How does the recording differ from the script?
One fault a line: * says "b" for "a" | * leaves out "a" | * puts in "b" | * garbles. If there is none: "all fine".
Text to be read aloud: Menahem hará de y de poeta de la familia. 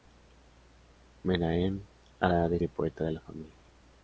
all fine